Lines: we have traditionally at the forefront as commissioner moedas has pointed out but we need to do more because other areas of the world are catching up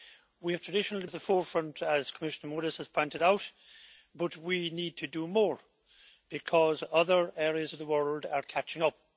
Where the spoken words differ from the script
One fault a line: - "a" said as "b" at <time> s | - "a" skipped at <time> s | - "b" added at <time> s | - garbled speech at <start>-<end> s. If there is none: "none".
none